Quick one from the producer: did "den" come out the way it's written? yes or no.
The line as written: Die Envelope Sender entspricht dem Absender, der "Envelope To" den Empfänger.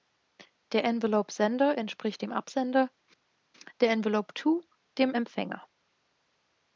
no